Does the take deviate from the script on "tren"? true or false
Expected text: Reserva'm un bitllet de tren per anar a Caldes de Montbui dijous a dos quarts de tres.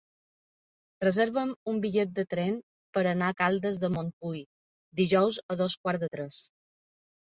false